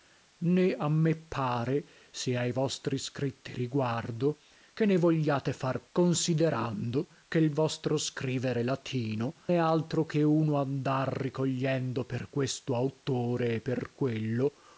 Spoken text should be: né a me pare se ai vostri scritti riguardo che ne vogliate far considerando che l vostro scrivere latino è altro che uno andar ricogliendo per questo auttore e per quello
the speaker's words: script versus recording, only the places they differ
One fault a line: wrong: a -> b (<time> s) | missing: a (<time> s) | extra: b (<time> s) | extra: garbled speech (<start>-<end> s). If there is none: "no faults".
no faults